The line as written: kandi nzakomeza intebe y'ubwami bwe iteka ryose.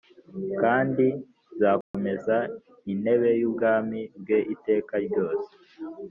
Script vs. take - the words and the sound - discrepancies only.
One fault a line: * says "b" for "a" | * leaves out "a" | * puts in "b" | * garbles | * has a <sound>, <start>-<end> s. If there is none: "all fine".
* has a dropout, 1.8-1.9 s